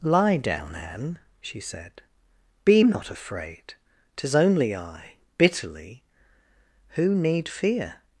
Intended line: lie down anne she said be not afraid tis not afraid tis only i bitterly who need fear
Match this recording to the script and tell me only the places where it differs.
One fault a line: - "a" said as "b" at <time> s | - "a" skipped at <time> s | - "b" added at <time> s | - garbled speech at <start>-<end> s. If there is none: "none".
- "not afraid tis" skipped at 4.3 s